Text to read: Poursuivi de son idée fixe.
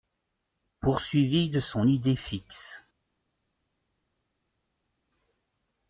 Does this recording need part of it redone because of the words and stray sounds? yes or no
no